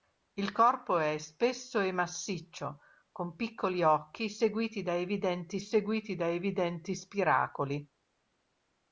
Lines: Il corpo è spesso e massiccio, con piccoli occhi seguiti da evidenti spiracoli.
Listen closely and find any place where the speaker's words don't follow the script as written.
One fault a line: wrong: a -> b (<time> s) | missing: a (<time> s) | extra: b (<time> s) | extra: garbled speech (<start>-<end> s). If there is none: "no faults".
extra: seguiti da evidenti (5.6 s)